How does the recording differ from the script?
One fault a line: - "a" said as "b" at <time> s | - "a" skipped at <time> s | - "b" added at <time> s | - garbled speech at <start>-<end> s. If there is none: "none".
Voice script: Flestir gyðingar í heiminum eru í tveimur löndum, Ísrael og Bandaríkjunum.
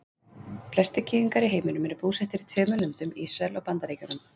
- "búsettir" added at 2.1 s